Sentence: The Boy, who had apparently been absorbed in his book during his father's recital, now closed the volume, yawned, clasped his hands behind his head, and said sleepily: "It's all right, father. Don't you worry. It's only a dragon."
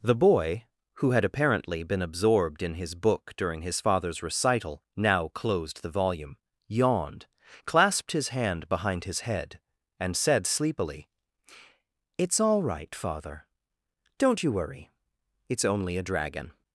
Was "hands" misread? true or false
true